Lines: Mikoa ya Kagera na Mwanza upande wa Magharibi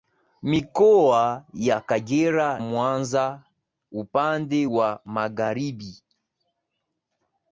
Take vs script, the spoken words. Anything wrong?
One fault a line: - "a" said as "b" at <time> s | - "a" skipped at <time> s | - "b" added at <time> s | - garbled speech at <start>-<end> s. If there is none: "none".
- "na" skipped at 2.6 s